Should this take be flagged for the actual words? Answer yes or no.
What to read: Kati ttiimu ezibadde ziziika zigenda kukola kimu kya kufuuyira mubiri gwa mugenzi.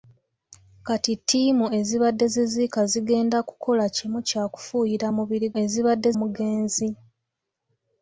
yes